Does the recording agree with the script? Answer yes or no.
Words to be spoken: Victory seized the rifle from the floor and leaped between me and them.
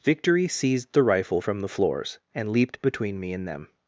no